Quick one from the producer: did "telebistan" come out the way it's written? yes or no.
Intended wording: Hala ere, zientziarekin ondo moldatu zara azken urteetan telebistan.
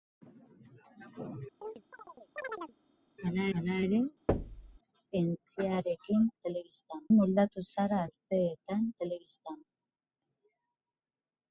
yes